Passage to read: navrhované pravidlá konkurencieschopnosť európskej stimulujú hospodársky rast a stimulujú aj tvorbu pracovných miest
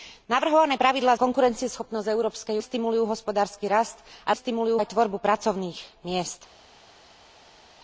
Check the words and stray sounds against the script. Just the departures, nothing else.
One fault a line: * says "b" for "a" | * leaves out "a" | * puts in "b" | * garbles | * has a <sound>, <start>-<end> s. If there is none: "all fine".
all fine